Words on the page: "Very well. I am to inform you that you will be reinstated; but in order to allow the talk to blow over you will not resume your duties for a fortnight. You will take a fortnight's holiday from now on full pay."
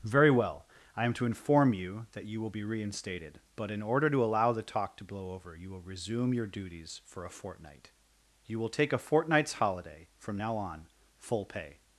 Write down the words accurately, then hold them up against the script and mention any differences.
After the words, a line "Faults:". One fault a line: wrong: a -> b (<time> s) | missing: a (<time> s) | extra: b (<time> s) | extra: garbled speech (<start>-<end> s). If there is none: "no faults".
"Very well. I am to inform you that you will be reinstated; but in order to allow the talk to blow over you will resume your duties for a fortnight. You will take a fortnight's holiday from now on full pay."
Faults:
missing: not (5.8 s)